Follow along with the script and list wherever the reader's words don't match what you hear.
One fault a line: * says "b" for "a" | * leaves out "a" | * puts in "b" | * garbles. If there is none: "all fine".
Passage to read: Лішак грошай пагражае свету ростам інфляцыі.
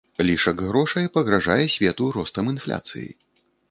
all fine